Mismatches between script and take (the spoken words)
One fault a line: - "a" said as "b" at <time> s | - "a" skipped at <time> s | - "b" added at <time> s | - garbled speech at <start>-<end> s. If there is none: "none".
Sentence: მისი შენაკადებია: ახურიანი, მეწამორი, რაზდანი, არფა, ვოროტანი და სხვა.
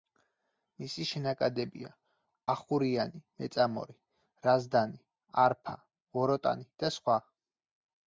none